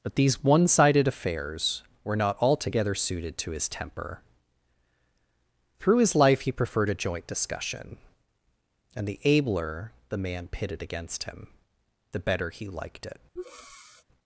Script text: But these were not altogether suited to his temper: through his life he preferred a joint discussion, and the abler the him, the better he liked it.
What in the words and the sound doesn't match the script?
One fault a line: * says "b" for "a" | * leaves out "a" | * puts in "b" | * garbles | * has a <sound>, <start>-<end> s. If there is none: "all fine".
* puts in "one sided affairs"
* puts in "man pitted against"
* has a breath, 13.4-14.0 s